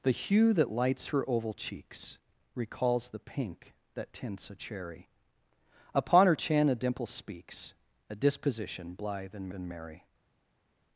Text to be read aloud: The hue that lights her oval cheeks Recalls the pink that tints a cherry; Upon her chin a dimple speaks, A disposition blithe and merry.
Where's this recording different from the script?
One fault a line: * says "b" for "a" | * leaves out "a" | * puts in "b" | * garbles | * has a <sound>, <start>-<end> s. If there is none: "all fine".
* puts in "and"